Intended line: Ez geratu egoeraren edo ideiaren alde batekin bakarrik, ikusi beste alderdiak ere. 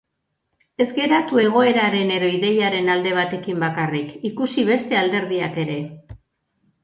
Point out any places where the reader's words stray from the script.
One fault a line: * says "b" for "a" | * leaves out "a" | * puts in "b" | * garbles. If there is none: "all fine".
all fine